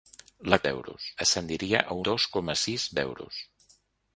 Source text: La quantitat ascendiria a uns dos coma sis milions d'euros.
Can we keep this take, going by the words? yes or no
no